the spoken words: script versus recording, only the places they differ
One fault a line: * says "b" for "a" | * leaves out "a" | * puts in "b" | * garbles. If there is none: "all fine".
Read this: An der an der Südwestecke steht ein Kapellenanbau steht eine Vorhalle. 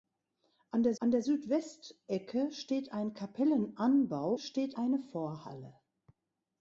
all fine